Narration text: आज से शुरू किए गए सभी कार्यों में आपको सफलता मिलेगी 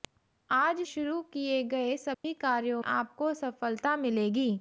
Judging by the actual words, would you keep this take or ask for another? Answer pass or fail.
fail